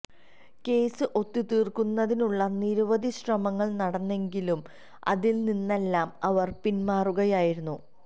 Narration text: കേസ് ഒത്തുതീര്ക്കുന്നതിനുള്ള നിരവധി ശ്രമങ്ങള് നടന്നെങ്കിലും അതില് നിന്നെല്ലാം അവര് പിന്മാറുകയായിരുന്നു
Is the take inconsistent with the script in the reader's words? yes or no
no